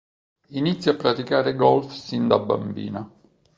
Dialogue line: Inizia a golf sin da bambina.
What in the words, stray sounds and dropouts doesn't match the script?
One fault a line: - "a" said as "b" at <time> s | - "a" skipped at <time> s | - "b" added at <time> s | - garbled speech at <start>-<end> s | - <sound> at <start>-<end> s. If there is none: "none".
- "praticare" added at 0.9 s